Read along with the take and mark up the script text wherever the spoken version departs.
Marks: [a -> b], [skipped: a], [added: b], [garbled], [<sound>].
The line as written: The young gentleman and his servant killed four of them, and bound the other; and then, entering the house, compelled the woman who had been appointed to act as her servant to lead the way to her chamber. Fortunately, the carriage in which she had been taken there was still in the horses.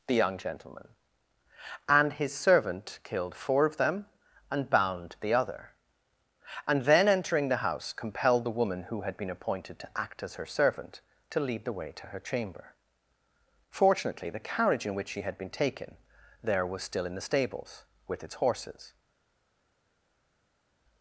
The young gentleman and his servant killed four of them, and bound the other; and then, entering the house, compelled the woman who had been appointed to act as her servant to lead the way to her chamber. Fortunately, the carriage in which she had been taken there was still in the [added: stables with its] horses.